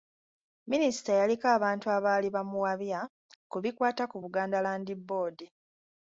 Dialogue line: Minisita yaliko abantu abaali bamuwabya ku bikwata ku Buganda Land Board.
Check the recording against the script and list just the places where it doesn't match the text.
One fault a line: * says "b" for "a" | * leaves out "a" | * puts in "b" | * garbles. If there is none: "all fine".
all fine